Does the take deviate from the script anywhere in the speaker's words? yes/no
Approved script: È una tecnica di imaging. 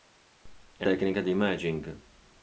yes